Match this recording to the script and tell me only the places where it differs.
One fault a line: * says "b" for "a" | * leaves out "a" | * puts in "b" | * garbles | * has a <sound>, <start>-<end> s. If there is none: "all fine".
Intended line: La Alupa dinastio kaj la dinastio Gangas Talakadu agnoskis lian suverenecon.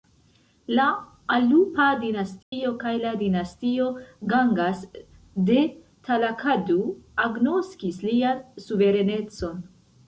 * has a dropout, 2.4-2.5 s
* puts in "de"